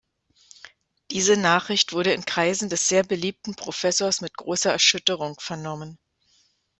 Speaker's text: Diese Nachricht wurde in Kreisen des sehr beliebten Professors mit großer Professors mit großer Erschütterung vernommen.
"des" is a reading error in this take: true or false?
false